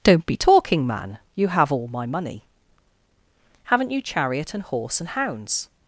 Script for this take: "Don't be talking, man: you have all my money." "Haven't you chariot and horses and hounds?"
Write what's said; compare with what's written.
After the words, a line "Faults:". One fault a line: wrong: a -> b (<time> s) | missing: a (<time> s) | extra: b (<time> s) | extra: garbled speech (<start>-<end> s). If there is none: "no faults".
"Don't be talking, man: you have all my money." "Haven't you chariot and horse and hounds?"
Faults:
wrong: horses -> horse (4.6 s)